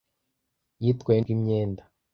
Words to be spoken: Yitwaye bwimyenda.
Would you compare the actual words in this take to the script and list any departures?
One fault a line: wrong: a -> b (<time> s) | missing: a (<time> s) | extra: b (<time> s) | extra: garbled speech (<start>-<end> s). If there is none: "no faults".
no faults